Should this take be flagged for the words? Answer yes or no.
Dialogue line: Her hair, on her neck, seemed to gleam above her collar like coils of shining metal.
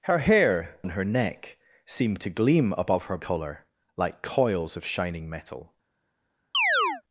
no